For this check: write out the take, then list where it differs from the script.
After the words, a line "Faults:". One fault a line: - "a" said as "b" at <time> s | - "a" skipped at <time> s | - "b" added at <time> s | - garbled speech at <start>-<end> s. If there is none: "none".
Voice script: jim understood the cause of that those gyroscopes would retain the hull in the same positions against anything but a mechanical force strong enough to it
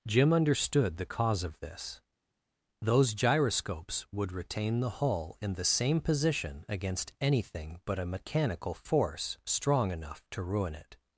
jim understood the cause of this those gyroscopes would retain the hull in the same position against anything but a mechanical force strong enough to ruin it
Faults:
- "that" said as "this" at 1.6 s
- "positions" said as "position" at 6.0 s
- "ruin" added at 10.4 s